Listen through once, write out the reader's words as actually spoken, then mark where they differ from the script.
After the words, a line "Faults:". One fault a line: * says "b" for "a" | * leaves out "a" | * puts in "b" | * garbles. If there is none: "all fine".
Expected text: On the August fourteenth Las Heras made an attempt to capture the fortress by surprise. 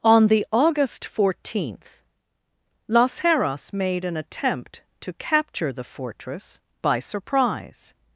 On the August fourteenth Las Heras made an attempt to capture the fortress by surprise.
Faults:
all fine